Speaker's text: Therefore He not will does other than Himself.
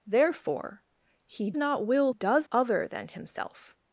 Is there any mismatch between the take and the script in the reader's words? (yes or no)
no